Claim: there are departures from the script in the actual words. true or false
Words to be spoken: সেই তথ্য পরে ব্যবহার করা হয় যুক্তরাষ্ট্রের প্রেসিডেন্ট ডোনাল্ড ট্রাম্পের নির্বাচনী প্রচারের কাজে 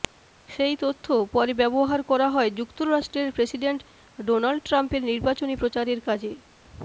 false